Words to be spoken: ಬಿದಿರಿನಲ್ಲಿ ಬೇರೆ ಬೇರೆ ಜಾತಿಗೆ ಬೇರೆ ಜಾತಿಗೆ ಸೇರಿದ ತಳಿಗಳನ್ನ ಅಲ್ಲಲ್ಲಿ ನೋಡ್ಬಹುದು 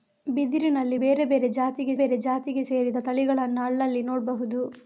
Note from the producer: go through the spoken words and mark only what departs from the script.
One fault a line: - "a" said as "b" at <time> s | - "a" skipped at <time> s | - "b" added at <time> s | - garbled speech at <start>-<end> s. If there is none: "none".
none